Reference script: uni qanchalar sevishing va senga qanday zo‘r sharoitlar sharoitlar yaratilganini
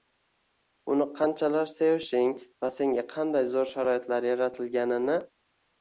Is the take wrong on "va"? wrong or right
right